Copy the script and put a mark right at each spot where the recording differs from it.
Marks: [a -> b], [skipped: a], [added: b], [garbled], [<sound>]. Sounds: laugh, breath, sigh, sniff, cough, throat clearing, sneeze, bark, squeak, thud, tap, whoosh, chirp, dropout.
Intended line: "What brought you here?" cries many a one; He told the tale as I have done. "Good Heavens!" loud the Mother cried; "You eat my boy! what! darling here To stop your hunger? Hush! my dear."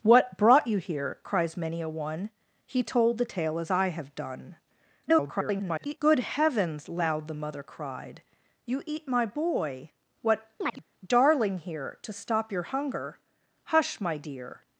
"What brought you here?" cries many a one; He told the tale as I have done. [garbled] "Good Heavens!" loud the Mother cried; "You eat my boy! what! [chirp] darling here To stop your hunger? Hush! my dear."